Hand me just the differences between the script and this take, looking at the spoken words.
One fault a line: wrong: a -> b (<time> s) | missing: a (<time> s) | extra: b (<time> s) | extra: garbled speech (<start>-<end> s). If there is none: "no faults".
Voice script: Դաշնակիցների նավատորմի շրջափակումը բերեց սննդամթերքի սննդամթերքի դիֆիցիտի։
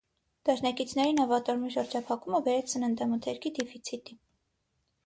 missing: սննդամթերքի (3.5 s)